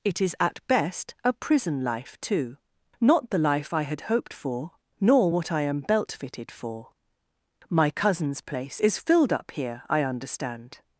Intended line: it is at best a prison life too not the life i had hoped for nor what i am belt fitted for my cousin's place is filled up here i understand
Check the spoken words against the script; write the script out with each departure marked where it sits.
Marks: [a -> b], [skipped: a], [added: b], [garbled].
it is at best a prison life too not the life i had hoped for nor what i am belt fitted for my cousin's place is filled up here i understand